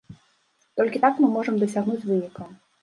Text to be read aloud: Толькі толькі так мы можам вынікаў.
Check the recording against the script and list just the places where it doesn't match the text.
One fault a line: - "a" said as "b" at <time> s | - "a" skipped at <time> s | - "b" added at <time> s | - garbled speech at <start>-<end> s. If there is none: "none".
- "толькі" skipped at 1.0 s
- "дасягнуць" added at 1.7 s